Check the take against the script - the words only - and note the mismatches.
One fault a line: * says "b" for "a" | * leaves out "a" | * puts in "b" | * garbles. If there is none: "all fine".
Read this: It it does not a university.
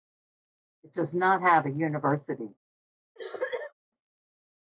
* leaves out "it"
* puts in "have"